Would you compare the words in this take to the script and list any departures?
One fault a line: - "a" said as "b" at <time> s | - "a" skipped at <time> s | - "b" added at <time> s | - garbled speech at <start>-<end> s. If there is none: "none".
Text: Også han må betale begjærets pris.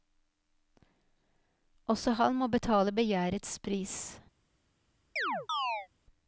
none